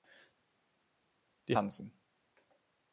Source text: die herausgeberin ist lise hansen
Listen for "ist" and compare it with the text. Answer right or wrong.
wrong